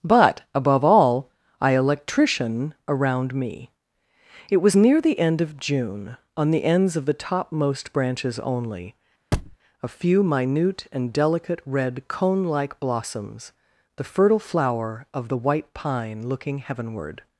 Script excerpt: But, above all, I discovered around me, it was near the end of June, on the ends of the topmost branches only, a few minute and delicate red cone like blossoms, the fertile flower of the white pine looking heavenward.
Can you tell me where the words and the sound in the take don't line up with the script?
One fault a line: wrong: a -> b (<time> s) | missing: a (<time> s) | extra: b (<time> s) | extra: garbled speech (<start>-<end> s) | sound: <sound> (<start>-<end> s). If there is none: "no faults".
wrong: discovered -> electrician (1.8 s)
sound: thud (9.3-9.6 s)